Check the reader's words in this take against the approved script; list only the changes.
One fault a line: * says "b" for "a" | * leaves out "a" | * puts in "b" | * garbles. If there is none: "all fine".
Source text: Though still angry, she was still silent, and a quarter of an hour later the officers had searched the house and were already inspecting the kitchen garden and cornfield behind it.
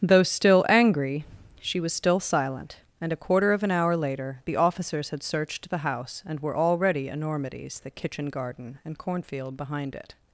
* says "enormities" for "inspecting"